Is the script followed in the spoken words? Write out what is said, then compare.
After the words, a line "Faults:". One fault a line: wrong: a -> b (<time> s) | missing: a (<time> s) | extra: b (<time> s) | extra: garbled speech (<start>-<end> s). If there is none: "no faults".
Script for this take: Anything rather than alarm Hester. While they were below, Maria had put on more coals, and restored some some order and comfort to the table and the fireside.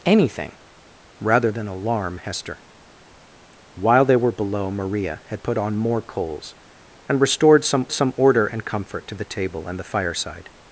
Anything rather than alarm Hester. While they were below, Maria had put on more coals, and restored some some order and comfort to the table and the fireside.
Faults:
no faults